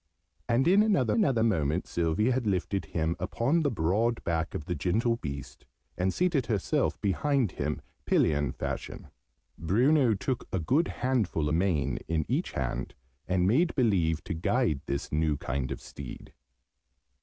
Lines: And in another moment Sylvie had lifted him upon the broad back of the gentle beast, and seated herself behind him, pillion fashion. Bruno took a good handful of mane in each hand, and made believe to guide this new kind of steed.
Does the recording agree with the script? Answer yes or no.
no